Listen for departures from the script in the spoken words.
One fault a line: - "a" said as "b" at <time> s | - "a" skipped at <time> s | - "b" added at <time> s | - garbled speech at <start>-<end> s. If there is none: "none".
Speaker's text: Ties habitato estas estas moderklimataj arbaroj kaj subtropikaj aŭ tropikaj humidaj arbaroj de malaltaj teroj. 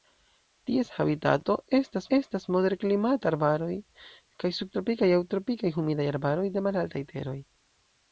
none